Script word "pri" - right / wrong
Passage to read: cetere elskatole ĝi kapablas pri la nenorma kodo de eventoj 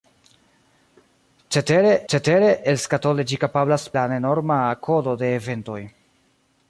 wrong